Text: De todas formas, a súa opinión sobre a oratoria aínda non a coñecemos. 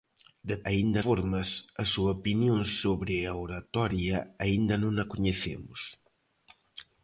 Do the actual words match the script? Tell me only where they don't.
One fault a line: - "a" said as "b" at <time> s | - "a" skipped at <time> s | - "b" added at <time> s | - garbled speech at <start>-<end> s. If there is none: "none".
- "todas" said as "aínda" at 0.7 s